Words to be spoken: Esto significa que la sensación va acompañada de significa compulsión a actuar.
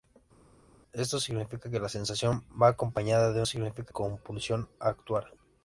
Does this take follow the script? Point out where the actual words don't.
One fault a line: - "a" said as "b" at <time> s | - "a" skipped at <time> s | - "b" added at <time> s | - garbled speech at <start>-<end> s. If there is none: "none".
none